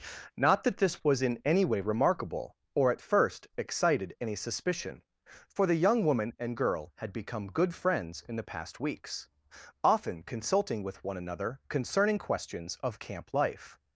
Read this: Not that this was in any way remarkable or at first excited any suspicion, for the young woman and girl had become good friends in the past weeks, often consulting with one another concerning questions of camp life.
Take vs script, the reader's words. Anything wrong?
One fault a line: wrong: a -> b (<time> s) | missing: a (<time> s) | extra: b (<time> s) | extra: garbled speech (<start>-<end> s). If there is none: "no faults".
no faults